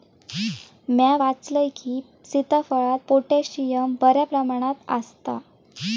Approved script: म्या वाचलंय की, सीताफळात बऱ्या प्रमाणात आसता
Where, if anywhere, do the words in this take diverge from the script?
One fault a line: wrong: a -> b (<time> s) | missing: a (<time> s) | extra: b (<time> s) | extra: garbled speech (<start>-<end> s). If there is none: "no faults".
extra: पोटॅशियम (3.1 s)